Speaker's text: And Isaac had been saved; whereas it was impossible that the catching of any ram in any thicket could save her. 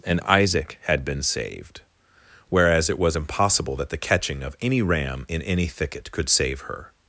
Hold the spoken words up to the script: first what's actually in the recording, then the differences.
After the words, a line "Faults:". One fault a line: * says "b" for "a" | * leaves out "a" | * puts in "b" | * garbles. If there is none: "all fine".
And Isaac had been saved; whereas it was impossible that the catching of any ram in any thicket could save her.
Faults:
all fine